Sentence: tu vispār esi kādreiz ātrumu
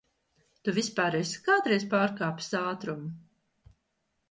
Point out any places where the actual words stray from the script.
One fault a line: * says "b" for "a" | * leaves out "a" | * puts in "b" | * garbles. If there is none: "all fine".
* puts in "pārkāpis"